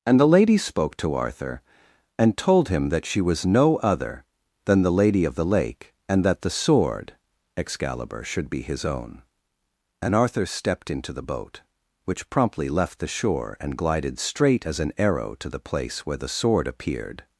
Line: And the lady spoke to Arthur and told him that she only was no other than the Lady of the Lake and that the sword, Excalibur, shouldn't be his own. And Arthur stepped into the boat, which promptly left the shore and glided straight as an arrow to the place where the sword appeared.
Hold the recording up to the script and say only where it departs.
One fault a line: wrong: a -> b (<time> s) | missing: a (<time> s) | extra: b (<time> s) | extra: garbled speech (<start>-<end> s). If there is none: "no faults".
missing: only (3.2 s)
wrong: shouldn't -> should (8.2 s)